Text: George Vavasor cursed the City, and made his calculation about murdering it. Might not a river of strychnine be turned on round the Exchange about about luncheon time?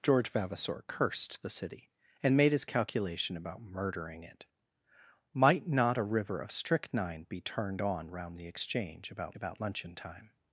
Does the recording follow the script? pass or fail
pass